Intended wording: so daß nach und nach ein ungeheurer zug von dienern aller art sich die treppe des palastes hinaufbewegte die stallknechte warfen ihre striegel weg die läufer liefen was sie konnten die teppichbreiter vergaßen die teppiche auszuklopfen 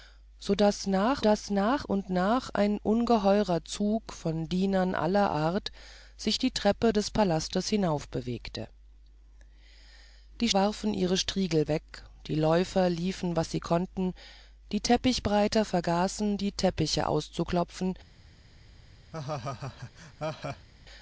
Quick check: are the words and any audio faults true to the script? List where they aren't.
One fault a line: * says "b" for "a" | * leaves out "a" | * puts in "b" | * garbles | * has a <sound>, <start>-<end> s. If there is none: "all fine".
* puts in "daß nach"
* leaves out "stallknechte"
* has a laugh, 19.1-20.7 s